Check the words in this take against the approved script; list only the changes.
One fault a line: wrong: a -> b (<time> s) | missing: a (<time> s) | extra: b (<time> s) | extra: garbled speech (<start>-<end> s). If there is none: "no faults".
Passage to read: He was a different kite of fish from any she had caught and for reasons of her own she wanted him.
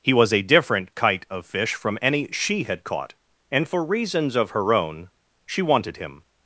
no faults